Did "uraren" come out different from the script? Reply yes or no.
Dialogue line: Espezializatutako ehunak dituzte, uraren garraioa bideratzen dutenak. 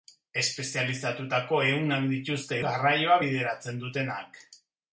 yes